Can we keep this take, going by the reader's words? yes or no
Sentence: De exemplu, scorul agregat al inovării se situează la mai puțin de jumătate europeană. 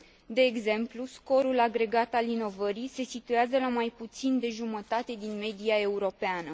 no